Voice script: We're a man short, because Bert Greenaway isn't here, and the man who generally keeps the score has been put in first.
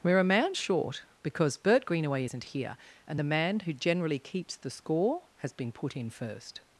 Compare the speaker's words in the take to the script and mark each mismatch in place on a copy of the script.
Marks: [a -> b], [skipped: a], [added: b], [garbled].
We're a man short, because Bert Greenaway isn't here, and the man who generally keeps the score has been put in first.